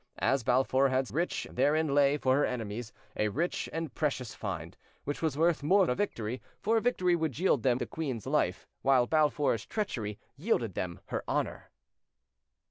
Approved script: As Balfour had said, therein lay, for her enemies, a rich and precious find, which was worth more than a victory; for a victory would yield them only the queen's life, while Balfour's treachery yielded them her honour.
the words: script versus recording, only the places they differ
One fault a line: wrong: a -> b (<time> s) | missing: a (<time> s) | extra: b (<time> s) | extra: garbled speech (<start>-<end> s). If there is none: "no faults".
wrong: said -> rich (1.1 s)
missing: than (5.9 s)
missing: only (7.8 s)